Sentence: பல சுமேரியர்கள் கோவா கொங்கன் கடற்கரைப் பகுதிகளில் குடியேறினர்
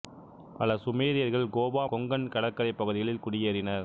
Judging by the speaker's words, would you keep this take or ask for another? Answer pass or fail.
pass